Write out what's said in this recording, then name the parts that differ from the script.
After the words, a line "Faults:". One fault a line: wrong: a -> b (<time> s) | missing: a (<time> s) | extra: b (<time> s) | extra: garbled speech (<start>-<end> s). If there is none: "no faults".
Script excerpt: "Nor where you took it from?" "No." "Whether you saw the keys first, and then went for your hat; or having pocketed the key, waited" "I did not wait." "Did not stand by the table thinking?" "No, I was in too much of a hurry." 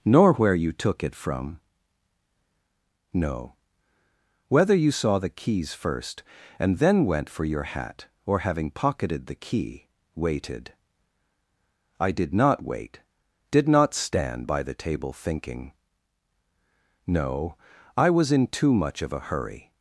"Nor where you took it from?" "No." "Whether you saw the keys first, and then went for your hat; or having pocketed the key, waited" "I did not wait." "Did not stand by the table thinking?" "No, I was in too much of a hurry."
Faults:
no faults